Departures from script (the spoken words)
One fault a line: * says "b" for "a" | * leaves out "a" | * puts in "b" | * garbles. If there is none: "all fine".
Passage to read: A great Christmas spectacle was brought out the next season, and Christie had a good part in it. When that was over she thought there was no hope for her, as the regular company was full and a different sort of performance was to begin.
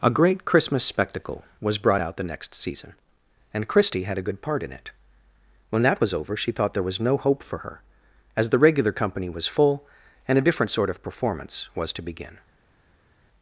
all fine